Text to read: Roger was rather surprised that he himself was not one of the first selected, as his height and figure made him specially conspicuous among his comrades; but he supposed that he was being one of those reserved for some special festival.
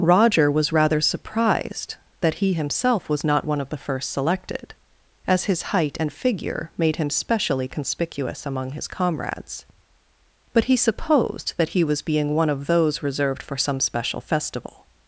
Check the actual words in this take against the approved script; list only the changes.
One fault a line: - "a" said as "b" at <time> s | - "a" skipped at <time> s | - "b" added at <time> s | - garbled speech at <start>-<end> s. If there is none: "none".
none